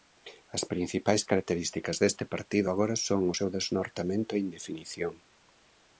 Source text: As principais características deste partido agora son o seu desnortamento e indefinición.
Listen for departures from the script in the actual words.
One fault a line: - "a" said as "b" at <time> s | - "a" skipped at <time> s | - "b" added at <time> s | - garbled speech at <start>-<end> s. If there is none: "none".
none